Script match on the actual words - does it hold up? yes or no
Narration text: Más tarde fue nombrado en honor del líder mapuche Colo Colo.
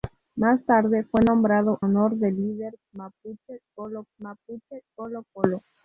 no